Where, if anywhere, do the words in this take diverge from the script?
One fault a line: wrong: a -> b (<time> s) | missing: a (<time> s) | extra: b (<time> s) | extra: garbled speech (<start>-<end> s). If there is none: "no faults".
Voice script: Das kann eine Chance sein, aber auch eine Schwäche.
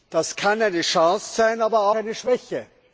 missing: auch (1.9 s)